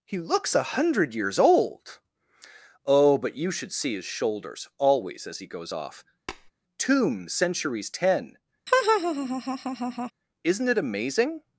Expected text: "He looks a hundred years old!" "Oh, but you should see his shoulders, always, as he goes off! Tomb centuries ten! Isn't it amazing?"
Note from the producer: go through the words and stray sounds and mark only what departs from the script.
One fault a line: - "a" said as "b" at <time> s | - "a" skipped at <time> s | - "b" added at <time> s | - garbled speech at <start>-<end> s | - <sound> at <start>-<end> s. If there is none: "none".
- tap at 6.3-6.5 s
- laugh at 8.7-10.1 s